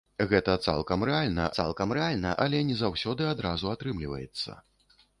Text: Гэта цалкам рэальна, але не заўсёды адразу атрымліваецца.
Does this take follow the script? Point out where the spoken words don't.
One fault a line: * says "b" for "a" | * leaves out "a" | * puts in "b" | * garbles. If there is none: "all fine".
* puts in "цалкам рэальна"